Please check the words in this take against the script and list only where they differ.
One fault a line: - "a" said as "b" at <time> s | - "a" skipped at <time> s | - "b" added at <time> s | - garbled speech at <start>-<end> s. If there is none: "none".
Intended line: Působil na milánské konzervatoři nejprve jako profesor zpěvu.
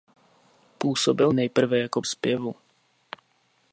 - "na milánské konzervatoři" skipped at 1.3 s
- "profesor" skipped at 2.0 s